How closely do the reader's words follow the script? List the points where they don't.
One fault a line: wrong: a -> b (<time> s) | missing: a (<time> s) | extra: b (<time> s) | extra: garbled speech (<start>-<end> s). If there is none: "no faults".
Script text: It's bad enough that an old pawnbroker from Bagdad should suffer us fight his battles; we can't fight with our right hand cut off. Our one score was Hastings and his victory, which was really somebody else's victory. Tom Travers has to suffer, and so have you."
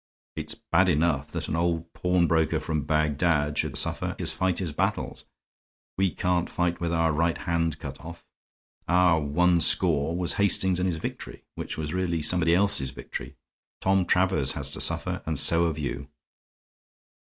no faults